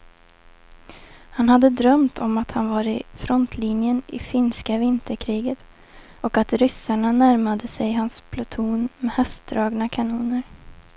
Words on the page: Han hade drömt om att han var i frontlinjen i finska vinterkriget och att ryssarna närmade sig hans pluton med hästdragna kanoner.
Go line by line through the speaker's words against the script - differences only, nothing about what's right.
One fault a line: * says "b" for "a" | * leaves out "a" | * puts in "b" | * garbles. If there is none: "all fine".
all fine